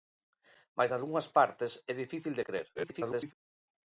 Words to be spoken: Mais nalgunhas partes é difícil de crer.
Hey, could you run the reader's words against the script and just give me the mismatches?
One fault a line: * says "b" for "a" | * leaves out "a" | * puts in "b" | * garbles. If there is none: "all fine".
* garbles